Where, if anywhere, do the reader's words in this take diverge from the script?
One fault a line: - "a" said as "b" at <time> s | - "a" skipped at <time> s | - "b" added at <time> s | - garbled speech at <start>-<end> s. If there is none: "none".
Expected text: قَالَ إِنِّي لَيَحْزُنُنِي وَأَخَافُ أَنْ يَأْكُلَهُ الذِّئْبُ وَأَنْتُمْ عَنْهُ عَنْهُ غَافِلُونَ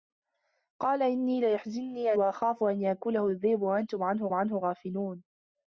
none